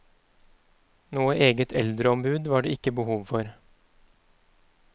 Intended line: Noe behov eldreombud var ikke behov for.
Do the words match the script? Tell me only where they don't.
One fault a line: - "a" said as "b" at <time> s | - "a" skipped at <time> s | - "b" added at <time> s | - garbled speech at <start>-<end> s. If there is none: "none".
- "behov" said as "eget" at 1.5 s
- "det" added at 2.7 s